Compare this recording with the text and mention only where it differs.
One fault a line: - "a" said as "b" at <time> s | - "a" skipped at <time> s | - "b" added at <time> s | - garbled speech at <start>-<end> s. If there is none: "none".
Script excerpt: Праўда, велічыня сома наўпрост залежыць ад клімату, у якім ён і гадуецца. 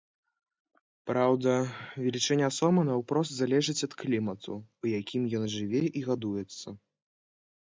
- "жыве" added at 5.6 s